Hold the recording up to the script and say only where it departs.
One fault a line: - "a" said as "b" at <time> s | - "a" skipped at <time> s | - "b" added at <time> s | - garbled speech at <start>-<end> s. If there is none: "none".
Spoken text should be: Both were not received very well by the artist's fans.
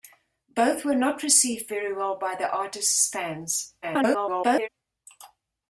- garbled speech at 3.8-4.7 s